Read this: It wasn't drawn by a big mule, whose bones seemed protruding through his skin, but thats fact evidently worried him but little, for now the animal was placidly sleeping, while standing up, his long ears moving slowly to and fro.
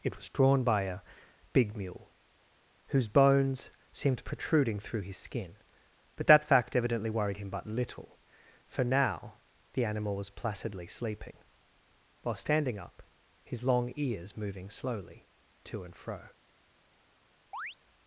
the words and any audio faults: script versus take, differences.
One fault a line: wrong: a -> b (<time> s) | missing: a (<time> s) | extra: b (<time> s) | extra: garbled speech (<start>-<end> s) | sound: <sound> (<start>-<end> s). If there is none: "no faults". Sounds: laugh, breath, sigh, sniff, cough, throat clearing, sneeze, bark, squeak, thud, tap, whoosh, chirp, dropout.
wrong: wasn't -> was (0.1 s)
wrong: thats -> that (6.3 s)
sound: chirp (17.5-17.8 s)